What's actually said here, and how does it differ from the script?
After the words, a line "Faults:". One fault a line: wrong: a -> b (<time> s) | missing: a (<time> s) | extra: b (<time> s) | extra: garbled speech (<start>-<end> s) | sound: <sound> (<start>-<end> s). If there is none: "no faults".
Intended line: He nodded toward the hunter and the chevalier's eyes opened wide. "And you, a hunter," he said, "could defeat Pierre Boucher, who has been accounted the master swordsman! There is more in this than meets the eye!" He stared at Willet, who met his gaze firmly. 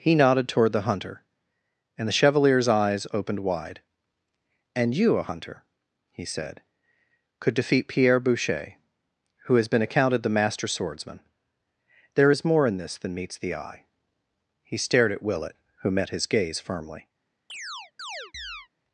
He nodded toward the hunter and the chevalier's eyes opened wide. "And you, a hunter," he said, "could defeat Pierre Boucher, who has been accounted the master swordsman! There is more in this than meets the eye!" He stared at Willet, who met his gaze firmly.
Faults:
sound: chirp (17.5-18.7 s)